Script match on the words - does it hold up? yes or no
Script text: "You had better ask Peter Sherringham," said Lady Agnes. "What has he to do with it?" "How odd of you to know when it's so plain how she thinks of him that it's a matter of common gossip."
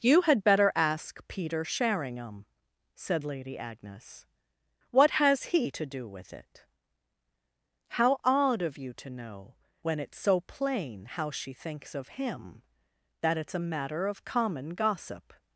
yes